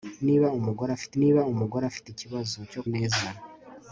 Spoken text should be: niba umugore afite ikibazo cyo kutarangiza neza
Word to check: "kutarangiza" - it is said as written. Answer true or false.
false